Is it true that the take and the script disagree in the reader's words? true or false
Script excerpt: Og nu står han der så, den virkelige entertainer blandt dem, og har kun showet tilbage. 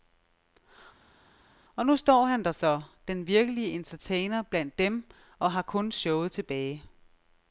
false